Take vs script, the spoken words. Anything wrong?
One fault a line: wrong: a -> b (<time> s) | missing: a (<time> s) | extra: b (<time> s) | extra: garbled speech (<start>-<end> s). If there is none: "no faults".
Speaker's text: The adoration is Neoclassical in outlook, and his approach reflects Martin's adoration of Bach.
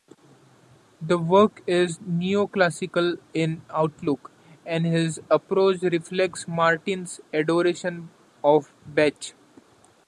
wrong: adoration -> work (1.2 s)